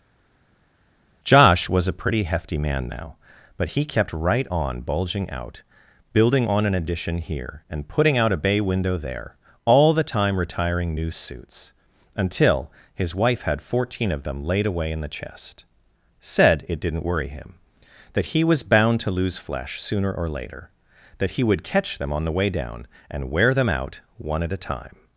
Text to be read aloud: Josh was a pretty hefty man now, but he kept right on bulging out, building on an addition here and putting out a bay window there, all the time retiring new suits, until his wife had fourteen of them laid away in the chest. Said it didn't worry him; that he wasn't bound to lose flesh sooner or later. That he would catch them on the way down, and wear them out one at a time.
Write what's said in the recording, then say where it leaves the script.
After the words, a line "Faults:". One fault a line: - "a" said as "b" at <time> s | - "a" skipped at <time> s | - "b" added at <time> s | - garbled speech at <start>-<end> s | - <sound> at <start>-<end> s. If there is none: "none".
Josh was a pretty hefty man now, but he kept right on bulging out, building on an addition here and putting out a bay window there, all the time retiring new suits, until his wife had fourteen of them laid away in the chest. Said it didn't worry him; that he was bound to lose flesh sooner or later. That he would catch them on the way down, and wear them out one at a time.
Faults:
- "wasn't" said as "was" at 18.4 s